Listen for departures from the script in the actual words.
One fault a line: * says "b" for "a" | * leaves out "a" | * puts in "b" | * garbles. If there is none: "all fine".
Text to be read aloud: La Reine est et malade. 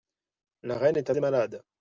all fine